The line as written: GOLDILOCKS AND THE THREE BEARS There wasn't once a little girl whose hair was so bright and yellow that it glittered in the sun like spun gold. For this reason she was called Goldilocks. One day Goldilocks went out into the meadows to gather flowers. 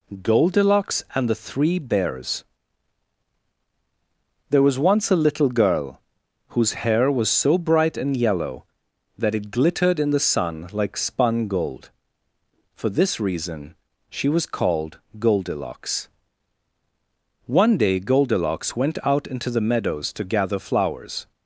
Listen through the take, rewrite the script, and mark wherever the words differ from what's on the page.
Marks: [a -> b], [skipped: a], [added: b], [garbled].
GOLDILOCKS AND THE THREE BEARS There [wasn't -> was] once a little girl whose hair was so bright and yellow that it glittered in the sun like spun gold. For this reason she was called Goldilocks. One day Goldilocks went out into the meadows to gather flowers.